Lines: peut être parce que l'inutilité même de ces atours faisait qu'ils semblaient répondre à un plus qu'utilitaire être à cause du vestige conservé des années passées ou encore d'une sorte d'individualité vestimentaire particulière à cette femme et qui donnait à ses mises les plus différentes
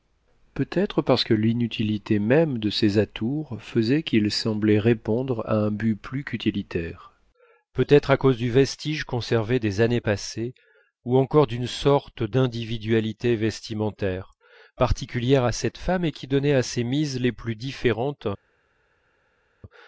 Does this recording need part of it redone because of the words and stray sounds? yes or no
yes